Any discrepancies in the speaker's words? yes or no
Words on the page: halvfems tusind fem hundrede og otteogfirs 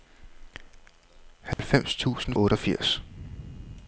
yes